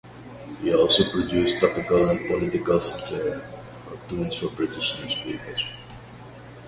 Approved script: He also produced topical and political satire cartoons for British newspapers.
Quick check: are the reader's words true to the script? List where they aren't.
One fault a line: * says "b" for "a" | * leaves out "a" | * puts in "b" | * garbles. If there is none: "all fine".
all fine